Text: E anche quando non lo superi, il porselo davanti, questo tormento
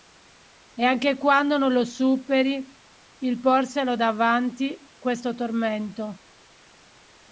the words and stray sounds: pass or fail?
pass